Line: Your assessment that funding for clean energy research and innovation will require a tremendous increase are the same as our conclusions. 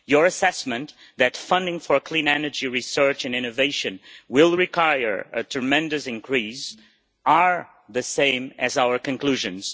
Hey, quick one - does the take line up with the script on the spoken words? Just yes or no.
yes